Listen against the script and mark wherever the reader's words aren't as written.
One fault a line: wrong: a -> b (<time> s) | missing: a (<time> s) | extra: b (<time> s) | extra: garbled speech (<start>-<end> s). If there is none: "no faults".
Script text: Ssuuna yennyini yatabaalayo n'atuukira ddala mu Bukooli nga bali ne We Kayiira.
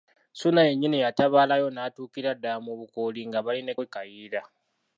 no faults